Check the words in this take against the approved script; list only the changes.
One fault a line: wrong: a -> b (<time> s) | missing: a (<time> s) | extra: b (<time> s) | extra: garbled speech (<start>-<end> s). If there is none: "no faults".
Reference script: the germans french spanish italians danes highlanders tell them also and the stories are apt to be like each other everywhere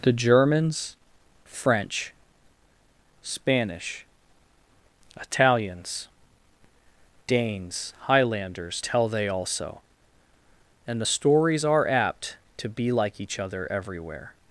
wrong: them -> they (9.1 s)